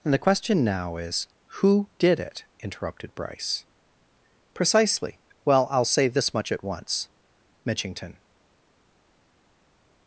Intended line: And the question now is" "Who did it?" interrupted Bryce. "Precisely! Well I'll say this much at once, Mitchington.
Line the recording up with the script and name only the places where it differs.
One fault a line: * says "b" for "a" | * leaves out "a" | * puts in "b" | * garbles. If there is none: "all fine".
all fine